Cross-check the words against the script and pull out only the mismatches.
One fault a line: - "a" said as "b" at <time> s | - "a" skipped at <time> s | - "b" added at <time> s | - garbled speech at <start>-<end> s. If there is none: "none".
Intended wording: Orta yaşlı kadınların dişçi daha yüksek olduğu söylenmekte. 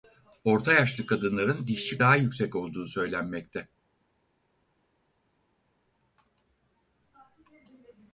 none